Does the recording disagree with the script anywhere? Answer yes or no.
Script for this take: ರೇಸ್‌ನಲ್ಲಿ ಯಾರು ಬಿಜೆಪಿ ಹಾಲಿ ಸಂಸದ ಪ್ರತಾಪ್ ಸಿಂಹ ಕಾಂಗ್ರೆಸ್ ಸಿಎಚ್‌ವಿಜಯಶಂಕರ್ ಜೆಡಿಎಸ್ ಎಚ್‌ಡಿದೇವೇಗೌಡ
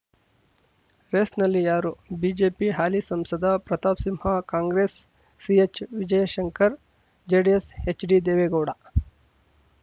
no